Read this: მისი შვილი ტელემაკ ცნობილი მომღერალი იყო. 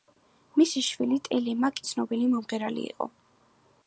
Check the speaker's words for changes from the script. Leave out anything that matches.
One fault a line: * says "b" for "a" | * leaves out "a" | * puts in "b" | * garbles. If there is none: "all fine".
all fine